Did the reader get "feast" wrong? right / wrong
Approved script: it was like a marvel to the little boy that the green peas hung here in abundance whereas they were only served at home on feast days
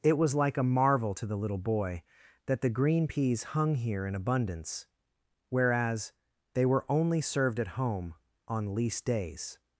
wrong